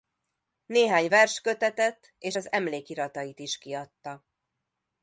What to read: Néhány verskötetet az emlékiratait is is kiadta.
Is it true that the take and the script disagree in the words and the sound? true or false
true